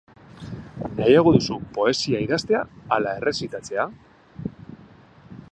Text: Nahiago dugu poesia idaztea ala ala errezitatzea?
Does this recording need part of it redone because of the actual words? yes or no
yes